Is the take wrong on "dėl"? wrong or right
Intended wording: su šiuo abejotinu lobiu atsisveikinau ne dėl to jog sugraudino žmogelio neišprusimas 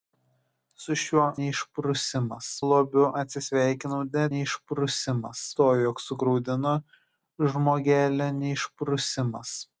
wrong